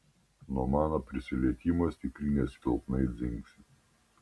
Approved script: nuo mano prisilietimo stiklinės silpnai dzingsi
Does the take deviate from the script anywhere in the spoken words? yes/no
no